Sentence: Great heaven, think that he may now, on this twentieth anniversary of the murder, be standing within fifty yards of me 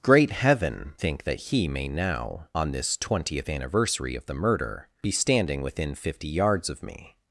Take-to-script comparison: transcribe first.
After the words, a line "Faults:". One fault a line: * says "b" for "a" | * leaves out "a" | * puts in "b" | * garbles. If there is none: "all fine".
Great heaven, think that he may now, on this twentieth anniversary of the murder, be standing within fifty yards of me
Faults:
all fine